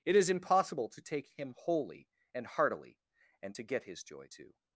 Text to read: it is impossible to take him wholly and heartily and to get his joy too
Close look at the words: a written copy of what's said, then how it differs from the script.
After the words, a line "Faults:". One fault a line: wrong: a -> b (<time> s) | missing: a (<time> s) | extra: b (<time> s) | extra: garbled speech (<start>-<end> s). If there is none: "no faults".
it is impossible to take him wholly and heartily and to get his joy too
Faults:
no faults